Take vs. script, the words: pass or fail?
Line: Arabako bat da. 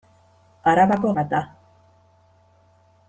pass